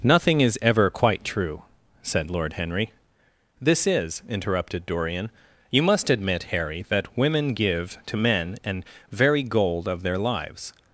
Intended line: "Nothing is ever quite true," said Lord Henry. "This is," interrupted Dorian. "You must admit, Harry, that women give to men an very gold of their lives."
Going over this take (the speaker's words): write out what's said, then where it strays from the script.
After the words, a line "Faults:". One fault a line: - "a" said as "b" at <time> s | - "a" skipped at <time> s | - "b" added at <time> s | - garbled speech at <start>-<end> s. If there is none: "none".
"Nothing is ever quite true," said Lord Henry. "This is," interrupted Dorian. "You must admit, Harry, that women give to men an very gold of their lives."
Faults:
none